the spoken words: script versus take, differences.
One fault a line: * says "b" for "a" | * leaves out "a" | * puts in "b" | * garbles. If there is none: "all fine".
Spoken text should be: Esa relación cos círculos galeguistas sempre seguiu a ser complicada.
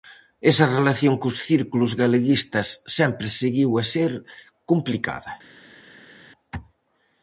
all fine